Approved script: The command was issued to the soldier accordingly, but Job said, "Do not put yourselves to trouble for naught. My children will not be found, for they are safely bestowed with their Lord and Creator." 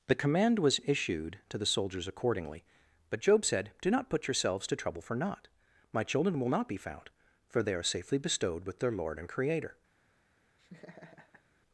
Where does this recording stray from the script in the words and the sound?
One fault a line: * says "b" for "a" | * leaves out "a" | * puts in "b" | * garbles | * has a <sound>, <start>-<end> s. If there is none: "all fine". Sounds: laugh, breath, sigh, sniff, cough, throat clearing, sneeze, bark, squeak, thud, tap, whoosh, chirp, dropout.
* says "soldiers" for "soldier"
* has a laugh, 10.6-11.4 s